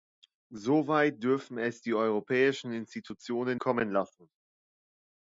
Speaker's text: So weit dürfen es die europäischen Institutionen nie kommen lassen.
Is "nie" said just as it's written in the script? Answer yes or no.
no